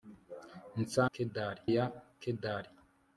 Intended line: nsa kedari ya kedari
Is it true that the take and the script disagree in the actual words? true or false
false